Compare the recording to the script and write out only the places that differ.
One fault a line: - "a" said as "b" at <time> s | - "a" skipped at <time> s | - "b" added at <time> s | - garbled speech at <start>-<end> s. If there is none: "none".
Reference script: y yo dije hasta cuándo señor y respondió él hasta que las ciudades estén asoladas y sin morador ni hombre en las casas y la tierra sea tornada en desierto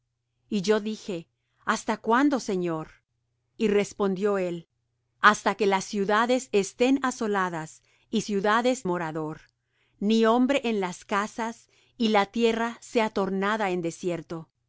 - "sin" said as "ciudades" at 8.2 s